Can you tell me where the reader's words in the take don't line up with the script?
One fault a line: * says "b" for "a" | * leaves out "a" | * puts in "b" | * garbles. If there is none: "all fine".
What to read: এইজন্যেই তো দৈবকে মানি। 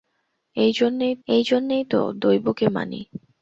* puts in "এইজন্যেই"